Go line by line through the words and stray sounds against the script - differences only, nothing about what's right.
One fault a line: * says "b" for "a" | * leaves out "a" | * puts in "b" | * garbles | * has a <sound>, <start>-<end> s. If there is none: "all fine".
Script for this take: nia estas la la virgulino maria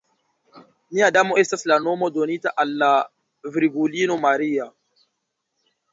* puts in "damo"
* puts in "nomo donita al"